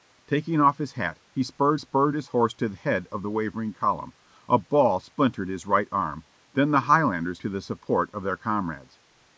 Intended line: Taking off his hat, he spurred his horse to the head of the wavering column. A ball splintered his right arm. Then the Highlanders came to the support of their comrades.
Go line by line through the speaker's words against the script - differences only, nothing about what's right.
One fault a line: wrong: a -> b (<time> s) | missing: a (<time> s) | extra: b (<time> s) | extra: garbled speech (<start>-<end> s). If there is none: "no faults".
extra: spurred (1.8 s)
missing: came (7.4 s)